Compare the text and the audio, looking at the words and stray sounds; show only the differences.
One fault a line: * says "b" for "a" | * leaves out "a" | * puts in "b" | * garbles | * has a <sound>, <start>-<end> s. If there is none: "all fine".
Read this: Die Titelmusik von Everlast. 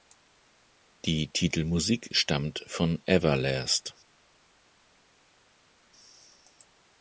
* puts in "stammt"